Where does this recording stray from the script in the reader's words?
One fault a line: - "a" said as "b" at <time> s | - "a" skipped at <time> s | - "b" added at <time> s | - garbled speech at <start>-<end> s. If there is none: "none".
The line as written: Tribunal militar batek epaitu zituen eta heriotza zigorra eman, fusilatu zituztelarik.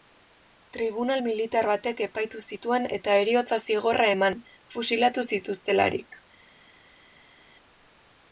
none